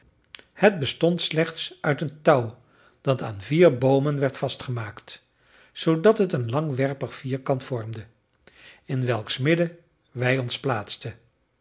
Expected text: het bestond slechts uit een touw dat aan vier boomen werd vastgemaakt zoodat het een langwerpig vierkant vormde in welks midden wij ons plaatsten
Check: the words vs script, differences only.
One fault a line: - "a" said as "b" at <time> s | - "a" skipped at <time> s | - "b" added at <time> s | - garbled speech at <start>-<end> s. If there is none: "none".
none